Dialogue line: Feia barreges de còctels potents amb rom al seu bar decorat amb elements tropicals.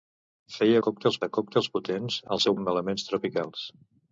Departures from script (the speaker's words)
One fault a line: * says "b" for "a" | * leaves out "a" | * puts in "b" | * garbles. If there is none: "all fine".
* says "còctels" for "barreges"
* leaves out "amb rom"
* leaves out "bar decorat"